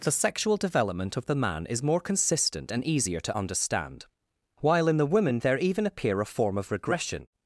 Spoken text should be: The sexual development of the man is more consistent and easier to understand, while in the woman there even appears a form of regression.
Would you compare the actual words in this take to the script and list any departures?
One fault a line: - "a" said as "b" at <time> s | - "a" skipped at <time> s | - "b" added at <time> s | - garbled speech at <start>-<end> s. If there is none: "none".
- "appears" said as "appear" at 5.9 s